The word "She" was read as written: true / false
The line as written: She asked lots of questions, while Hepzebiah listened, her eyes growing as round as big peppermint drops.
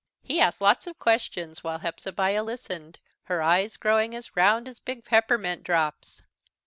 false